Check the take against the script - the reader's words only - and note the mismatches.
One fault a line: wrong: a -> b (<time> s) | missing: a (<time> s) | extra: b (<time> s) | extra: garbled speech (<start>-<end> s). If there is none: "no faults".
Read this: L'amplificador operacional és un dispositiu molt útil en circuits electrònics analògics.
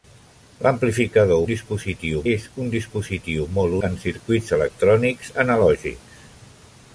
wrong: operacional -> dispositiu (1.5 s)
missing: útil (3.8 s)